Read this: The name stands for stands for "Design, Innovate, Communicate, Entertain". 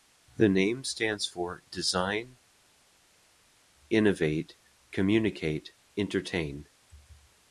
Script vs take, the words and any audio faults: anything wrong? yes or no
yes